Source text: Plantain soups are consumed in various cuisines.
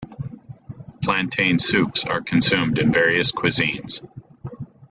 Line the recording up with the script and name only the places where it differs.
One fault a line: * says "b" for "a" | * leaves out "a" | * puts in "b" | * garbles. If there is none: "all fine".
all fine